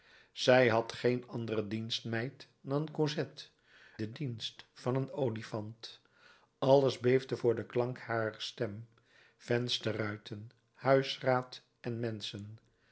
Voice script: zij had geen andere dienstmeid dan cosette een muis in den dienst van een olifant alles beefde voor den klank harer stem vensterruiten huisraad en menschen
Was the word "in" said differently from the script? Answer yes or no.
yes